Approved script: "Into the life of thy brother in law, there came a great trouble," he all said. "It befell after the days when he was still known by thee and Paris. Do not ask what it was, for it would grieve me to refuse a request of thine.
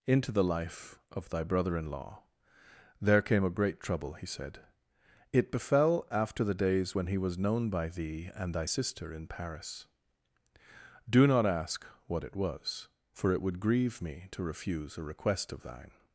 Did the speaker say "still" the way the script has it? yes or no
no